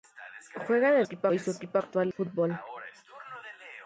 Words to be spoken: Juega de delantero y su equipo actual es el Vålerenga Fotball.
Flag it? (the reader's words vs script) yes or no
yes